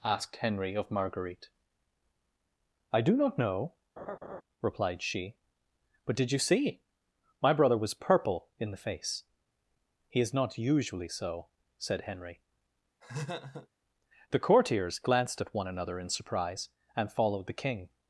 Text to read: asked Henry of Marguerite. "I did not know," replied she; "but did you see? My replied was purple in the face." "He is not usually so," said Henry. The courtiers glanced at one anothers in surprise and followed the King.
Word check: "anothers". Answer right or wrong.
wrong